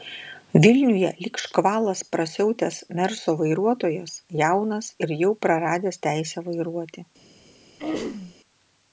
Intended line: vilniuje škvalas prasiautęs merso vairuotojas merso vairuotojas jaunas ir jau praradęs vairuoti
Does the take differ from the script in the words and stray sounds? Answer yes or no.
yes